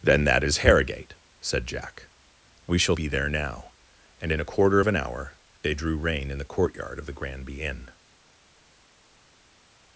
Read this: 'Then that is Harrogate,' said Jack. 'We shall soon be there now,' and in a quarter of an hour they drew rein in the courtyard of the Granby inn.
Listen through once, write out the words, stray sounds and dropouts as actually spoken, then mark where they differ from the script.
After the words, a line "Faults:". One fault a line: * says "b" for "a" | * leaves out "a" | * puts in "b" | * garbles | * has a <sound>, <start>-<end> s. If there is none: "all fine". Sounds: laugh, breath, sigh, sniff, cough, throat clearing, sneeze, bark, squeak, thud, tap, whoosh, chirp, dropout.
'Then that is Harrogate,' said Jack. 'We shall be there now,' and in a quarter of an hour they drew rein in the courtyard of the Granby inn.
Faults:
* leaves out "soon"